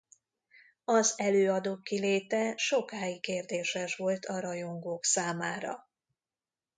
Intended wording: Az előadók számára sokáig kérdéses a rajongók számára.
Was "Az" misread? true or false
false